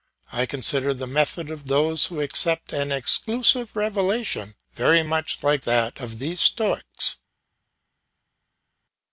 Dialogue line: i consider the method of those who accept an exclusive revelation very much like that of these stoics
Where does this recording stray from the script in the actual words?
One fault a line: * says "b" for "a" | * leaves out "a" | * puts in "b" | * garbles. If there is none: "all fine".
all fine